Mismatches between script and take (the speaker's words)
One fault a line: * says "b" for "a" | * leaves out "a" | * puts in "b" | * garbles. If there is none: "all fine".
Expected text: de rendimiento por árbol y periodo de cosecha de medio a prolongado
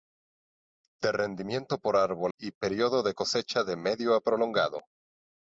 all fine